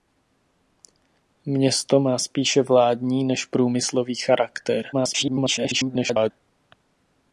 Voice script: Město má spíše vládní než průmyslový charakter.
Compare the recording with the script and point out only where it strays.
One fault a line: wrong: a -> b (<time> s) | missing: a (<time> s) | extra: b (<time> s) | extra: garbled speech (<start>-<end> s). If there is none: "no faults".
extra: garbled speech (4.9-6.3 s)